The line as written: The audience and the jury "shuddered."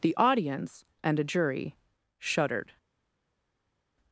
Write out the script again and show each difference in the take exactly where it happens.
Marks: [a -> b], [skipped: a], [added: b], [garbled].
The audience and [the -> a] jury "shuddered."